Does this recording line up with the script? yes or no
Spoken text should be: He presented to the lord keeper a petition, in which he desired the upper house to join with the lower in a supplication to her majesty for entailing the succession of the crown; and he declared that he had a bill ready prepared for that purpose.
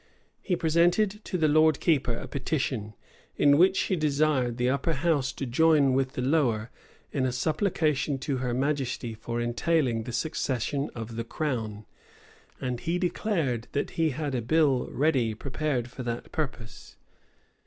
yes